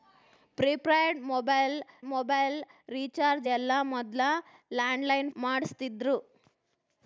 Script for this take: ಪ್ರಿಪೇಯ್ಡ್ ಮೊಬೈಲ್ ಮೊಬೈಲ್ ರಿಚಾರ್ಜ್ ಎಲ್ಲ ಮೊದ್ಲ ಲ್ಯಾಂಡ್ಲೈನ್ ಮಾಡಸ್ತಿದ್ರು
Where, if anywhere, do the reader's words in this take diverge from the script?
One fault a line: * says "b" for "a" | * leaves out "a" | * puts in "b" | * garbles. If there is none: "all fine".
all fine